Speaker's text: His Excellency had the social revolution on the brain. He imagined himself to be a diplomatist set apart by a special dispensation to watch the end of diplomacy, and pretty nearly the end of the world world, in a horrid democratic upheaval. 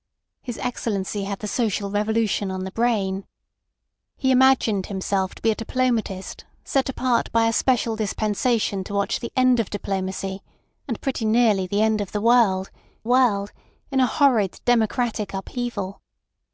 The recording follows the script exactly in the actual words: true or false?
true